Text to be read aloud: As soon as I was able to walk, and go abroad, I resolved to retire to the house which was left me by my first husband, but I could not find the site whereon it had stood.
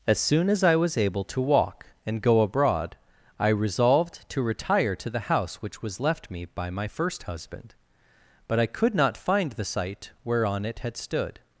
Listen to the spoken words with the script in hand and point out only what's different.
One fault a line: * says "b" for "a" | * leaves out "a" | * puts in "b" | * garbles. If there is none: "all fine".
all fine